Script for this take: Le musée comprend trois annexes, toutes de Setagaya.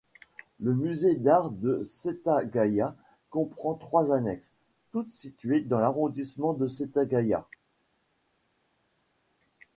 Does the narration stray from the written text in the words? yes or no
yes